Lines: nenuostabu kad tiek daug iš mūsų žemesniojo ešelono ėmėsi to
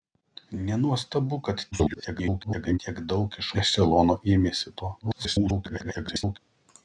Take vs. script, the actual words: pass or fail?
fail